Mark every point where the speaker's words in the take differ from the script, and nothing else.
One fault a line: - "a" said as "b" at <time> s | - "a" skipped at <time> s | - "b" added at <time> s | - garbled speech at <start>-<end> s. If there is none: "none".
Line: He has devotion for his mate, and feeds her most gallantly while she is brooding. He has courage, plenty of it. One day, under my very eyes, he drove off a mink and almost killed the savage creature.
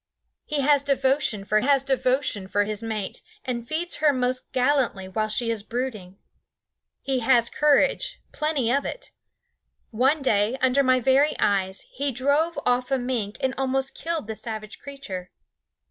- "has devotion for" added at 1.6 s